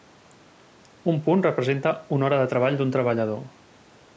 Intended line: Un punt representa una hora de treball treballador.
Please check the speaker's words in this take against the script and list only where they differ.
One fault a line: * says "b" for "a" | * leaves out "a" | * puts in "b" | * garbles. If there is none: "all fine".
* puts in "d'un"